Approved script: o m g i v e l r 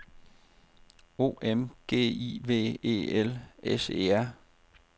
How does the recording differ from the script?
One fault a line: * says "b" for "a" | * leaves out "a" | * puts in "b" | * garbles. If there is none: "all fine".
* puts in "s e"